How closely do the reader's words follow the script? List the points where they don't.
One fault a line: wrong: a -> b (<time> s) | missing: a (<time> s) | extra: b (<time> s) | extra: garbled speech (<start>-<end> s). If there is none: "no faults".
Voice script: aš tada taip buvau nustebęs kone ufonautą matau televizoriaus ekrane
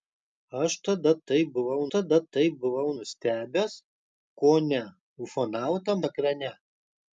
extra: tada taip buvau (1.9 s)
missing: matau televizoriaus (5.9 s)